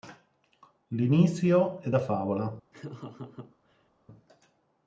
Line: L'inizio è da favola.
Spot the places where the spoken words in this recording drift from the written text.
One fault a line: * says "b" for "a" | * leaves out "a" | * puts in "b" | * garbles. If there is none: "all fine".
all fine